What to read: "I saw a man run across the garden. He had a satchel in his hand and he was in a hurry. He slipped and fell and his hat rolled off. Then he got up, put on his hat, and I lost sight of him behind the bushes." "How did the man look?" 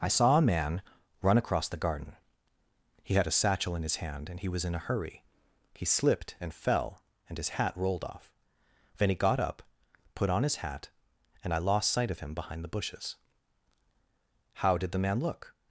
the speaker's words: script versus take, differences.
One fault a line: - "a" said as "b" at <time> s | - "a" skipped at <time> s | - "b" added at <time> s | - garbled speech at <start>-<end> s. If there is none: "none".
none